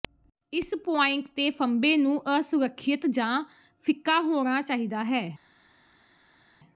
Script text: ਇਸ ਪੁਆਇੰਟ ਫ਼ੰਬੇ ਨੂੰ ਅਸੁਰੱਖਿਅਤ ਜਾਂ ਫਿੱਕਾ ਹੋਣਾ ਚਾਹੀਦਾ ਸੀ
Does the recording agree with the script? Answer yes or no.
no